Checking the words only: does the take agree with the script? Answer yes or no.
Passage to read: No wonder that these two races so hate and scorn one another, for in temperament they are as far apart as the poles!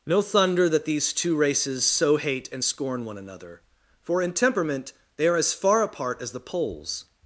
no